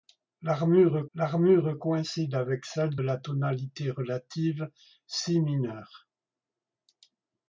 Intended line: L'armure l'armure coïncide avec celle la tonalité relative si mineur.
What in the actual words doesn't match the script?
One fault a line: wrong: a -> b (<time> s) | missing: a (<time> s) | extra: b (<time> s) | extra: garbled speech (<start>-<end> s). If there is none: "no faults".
no faults